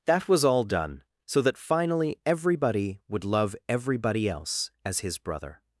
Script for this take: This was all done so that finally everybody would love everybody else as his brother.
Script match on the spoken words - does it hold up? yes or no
no